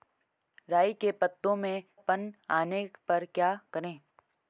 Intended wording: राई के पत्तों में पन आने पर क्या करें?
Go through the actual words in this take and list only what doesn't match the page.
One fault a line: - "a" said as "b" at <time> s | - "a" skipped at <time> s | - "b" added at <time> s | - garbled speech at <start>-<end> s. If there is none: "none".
none